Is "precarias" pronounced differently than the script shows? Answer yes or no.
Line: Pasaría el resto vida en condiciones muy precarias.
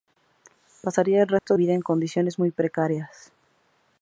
no